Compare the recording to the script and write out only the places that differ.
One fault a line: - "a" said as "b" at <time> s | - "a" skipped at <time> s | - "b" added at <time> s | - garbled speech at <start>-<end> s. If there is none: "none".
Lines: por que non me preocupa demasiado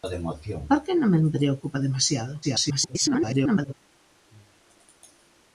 - garbled speech at 2.4-3.7 s